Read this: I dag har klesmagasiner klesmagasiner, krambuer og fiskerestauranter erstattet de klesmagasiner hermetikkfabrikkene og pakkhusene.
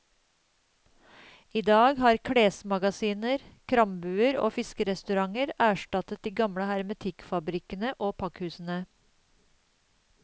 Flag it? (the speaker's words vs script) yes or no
yes